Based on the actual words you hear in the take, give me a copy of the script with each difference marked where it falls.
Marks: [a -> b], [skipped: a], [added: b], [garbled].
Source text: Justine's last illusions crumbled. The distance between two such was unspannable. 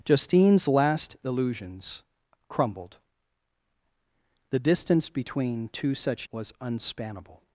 Justine's last illusions crumbled. The distance between two such was unspannable.